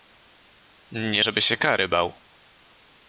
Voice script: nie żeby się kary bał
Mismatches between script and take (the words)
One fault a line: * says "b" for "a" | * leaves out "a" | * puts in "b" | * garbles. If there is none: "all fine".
all fine